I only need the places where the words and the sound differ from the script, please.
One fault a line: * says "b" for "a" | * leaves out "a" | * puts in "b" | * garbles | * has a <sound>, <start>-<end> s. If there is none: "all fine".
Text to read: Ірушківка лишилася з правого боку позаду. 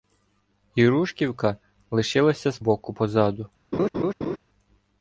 * leaves out "правого"
* has a laugh, 3.7-4.4 s